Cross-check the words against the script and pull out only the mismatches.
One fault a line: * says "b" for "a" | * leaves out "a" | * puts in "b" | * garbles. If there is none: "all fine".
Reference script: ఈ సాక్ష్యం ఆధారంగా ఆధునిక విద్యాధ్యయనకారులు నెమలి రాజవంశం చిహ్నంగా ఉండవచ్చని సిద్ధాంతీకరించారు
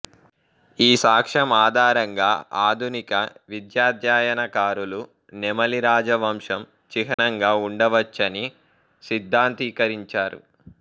all fine